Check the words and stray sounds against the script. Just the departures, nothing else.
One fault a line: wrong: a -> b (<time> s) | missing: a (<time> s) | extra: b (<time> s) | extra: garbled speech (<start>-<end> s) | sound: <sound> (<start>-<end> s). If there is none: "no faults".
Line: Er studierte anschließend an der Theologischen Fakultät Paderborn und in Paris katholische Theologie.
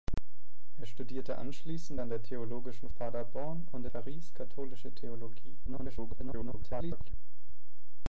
missing: Fakultät (2.9 s)
missing: in (3.9 s)
extra: garbled speech (5.7-7.1 s)